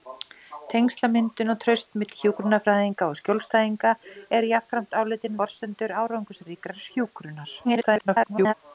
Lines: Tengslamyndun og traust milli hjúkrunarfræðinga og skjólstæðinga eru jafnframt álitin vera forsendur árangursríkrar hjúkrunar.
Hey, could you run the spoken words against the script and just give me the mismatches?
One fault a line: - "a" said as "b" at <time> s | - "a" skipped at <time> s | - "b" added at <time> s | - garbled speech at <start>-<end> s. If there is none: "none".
- "vera" skipped at 5.4 s
- garbled speech at 7.6-8.5 s